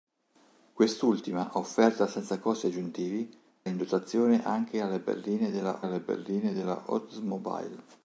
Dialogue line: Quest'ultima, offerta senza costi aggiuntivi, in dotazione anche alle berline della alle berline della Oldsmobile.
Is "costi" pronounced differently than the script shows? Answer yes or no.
no